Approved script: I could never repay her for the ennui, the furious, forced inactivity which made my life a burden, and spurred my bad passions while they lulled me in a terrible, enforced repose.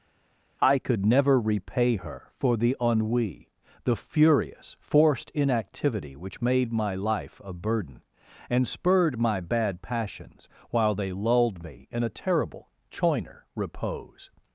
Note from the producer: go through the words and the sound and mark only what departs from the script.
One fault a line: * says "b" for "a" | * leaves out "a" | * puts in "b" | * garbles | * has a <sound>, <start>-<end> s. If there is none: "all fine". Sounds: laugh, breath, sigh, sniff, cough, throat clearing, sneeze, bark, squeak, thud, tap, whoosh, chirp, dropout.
* says "choiner" for "enforced"